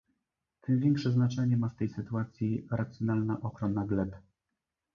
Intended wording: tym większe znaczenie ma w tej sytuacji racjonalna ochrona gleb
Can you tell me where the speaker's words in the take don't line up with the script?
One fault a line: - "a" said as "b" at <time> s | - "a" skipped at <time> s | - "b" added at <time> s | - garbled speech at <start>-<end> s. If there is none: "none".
none